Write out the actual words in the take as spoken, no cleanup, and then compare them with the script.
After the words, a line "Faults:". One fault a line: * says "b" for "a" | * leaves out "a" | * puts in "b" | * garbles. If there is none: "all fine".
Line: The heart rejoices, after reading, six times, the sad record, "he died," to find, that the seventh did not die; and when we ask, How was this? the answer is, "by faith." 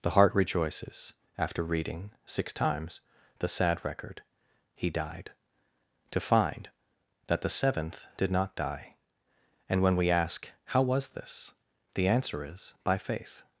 The heart rejoices, after reading, six times, the sad record, "he died," to find, that the seventh did not die; and when we ask, How was this? the answer is, "by faith."
Faults:
all fine